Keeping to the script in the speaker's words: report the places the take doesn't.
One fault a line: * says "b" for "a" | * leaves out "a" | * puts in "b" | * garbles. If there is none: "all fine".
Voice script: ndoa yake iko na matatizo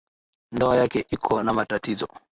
all fine